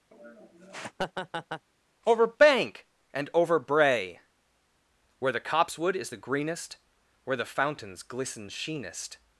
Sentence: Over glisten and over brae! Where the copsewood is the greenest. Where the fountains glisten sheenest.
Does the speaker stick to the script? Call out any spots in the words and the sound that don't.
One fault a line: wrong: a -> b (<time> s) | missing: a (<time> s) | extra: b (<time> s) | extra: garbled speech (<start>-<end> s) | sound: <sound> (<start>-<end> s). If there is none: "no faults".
sound: laugh (0.1-1.7 s)
wrong: glisten -> bank (2.3 s)